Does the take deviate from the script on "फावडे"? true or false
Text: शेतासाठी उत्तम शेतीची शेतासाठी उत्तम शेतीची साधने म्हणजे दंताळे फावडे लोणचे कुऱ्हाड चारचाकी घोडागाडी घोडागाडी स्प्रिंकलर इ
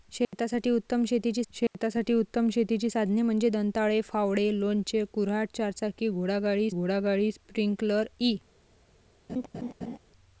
false